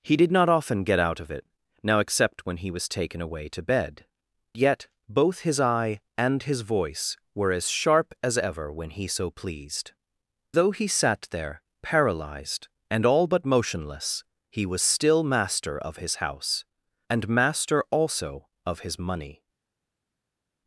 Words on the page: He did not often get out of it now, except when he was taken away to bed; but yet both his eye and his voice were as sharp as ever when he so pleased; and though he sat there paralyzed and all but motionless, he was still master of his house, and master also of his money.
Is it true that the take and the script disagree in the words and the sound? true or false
true